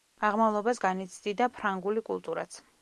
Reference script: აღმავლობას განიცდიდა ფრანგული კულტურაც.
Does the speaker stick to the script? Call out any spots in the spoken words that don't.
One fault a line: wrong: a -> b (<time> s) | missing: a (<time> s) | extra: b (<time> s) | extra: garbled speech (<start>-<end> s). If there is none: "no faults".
no faults